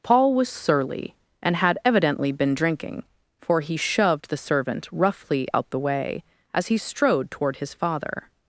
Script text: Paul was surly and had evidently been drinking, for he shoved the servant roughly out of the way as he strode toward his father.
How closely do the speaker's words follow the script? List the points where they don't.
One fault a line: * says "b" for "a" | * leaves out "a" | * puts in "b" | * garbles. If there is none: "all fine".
* leaves out "of"